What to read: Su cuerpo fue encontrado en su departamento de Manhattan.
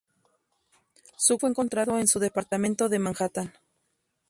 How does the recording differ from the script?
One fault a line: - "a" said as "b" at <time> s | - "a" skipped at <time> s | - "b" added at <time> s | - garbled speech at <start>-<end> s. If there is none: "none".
- "cuerpo" skipped at 1.4 s